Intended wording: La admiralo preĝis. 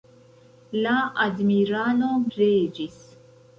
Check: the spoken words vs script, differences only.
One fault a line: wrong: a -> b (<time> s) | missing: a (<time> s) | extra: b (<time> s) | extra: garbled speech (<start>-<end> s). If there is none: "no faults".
no faults